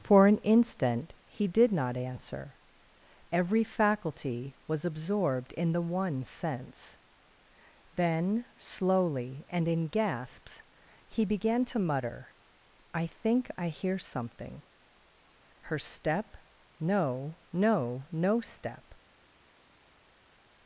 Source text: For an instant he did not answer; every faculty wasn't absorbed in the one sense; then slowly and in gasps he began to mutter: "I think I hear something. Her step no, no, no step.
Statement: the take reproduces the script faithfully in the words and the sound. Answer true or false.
false